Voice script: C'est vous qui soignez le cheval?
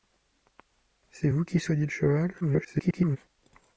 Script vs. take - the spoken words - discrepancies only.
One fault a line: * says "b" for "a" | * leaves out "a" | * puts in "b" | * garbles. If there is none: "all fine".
* garbles